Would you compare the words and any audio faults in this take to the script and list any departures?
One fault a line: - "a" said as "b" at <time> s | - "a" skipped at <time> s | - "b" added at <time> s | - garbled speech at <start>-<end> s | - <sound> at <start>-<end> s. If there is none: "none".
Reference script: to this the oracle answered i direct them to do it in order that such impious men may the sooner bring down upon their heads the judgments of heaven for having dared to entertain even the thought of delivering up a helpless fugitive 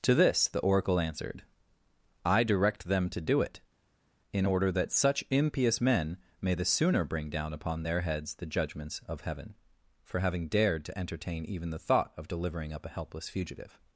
none